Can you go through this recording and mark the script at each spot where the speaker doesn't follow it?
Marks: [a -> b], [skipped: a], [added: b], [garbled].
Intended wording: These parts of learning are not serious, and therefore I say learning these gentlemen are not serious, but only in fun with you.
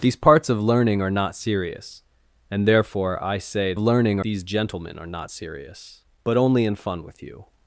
These parts of learning are not serious, and therefore I say learning these gentlemen are not serious, but only in fun with you.